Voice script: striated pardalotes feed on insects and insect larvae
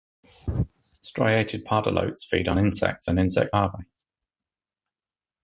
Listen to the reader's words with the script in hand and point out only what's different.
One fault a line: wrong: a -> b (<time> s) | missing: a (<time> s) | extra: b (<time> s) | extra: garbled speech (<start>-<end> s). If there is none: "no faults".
no faults